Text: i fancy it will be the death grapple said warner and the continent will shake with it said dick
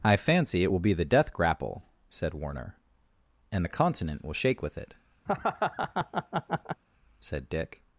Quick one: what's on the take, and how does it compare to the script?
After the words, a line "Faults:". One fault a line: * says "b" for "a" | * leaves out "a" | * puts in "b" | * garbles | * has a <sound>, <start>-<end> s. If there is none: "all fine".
i fancy it will be the death grapple said warner and the continent will shake with it said dick
Faults:
* has a laugh, 5.3-6.8 s